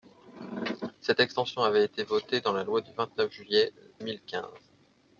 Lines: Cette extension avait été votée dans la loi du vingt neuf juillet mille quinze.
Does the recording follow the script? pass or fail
pass